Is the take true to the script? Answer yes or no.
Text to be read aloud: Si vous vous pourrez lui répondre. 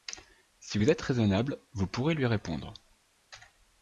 no